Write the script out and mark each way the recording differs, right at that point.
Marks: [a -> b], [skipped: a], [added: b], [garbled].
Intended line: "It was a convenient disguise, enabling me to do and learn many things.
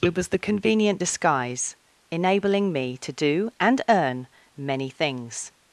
"It was [a -> the] convenient disguise, enabling me to do and [learn -> earn] many things.